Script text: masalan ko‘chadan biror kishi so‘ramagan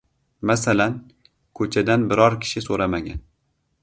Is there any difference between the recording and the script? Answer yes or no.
no